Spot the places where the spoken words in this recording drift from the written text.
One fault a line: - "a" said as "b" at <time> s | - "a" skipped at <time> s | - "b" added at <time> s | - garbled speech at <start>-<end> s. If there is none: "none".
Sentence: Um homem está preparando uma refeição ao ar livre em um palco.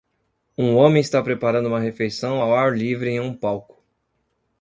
none